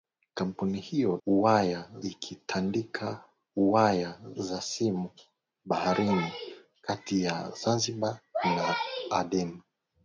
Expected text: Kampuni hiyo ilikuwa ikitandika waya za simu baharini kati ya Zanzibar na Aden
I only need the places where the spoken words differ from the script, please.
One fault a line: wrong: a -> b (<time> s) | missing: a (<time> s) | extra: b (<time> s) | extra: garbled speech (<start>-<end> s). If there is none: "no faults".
wrong: ilikuwa -> waya (1.3 s)